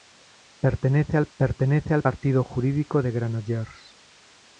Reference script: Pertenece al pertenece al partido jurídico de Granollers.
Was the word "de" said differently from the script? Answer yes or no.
no